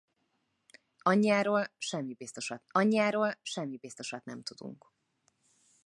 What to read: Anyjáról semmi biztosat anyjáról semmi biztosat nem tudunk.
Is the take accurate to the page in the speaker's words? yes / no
yes